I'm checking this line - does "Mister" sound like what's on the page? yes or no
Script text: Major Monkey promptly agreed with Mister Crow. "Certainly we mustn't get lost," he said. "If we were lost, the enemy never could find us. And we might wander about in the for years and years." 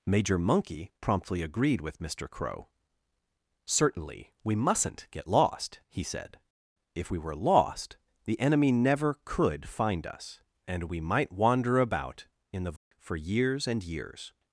yes